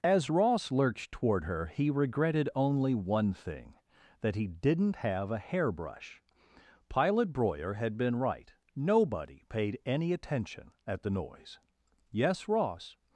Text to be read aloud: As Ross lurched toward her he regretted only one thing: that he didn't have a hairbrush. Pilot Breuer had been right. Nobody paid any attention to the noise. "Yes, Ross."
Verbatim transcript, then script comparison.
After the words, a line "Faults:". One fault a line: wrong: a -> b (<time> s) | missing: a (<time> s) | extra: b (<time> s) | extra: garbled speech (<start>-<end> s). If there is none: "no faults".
As Ross lurched toward her he regretted only one thing: that he didn't have a hairbrush. Pilot Breuer had been right. Nobody paid any attention at the noise. "Yes, Ross."
Faults:
wrong: to -> at (10.9 s)